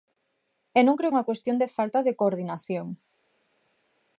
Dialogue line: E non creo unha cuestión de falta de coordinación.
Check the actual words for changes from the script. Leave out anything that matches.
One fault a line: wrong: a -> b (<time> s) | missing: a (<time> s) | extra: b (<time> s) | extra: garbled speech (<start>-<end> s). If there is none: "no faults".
no faults